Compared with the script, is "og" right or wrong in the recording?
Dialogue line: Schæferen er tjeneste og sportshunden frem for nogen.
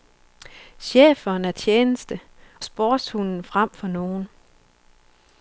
wrong